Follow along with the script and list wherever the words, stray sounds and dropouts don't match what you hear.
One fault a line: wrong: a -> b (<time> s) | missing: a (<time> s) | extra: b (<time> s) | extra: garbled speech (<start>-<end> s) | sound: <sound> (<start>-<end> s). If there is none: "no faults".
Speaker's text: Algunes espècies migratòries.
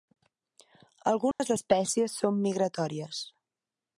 sound: dropout (1.3-1.4 s)
extra: són (2.2 s)